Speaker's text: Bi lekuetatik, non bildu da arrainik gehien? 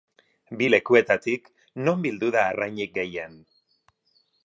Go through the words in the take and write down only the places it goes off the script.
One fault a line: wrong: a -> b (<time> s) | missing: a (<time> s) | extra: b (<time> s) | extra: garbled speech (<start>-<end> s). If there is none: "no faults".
no faults